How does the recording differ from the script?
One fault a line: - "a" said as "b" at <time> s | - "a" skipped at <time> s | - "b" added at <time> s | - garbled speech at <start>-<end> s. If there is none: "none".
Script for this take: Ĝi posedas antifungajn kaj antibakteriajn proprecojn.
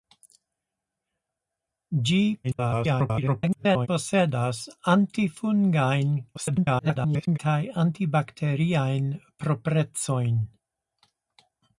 - garbled speech at 2.4-3.9 s
- garbled speech at 6.3-7.4 s